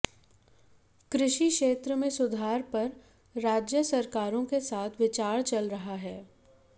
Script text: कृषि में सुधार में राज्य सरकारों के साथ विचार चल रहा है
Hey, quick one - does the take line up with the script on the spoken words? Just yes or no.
no